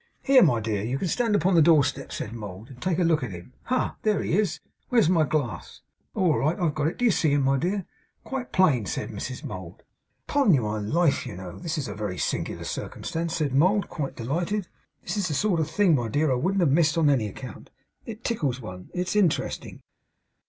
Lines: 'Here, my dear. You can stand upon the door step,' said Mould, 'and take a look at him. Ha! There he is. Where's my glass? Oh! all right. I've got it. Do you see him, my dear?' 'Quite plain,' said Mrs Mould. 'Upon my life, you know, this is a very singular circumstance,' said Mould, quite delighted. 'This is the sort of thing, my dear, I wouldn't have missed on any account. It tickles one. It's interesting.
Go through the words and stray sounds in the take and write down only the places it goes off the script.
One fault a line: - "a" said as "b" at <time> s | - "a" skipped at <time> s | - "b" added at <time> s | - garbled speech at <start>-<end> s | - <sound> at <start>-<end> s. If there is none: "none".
none